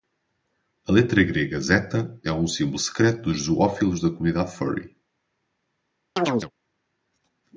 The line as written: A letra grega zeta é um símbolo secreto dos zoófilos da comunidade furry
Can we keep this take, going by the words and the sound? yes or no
no